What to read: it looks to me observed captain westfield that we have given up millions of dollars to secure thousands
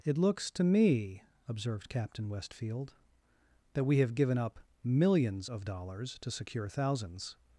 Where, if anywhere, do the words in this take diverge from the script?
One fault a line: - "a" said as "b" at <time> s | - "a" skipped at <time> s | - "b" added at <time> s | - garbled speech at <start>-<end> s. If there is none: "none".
none